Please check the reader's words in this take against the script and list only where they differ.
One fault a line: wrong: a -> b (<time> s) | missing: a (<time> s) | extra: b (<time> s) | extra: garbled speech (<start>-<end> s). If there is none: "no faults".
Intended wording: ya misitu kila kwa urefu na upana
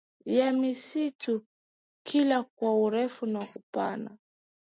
no faults